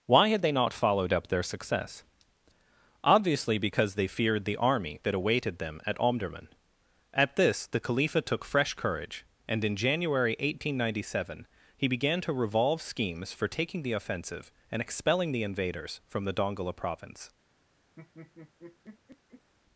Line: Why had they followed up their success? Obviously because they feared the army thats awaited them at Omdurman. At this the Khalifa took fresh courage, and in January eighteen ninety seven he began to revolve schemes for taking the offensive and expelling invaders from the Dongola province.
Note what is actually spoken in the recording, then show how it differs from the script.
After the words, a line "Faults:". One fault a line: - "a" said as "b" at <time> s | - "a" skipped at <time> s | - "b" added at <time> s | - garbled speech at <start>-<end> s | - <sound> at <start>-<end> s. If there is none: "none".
Why had they not followed up their success? Obviously because they feared the army that awaited them at Omdurman. At this the Khalifa took fresh courage, and in January eighteen ninety seven he began to revolve schemes for taking the offensive and expelling the invaders from the Dongola province.
Faults:
- "not" added at 0.5 s
- "thats" said as "that" at 5.0 s
- "the" added at 15.3 s
- laugh at 18.0-19.5 s